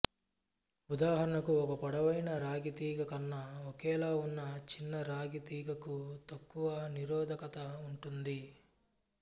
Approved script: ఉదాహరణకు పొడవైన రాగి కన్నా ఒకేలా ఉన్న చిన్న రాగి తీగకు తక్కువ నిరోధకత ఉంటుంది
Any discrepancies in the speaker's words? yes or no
yes